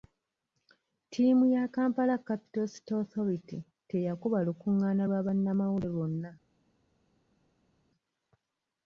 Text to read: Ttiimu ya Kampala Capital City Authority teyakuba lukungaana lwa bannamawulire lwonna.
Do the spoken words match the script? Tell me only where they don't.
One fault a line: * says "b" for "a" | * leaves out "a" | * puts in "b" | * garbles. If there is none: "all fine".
all fine